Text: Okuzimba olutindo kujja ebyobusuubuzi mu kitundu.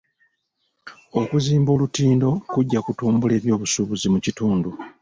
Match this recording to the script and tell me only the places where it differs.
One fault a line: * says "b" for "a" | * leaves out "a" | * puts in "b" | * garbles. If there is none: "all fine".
* puts in "kutumbula"